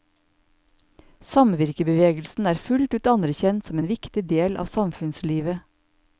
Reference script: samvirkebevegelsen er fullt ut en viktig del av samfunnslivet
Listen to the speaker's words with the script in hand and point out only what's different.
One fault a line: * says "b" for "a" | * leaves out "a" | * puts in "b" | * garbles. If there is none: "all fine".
* puts in "anerkjent som"